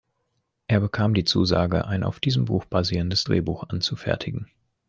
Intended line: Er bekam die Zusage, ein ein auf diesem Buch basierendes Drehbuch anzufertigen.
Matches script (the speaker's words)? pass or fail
fail